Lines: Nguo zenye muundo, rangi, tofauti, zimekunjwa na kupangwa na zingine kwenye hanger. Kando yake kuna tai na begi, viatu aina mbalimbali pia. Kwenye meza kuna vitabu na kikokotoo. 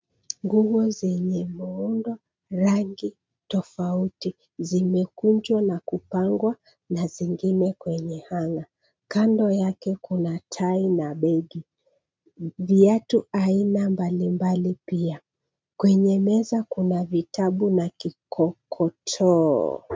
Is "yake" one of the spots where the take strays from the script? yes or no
no